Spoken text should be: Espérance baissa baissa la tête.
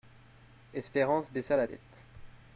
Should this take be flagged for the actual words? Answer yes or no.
yes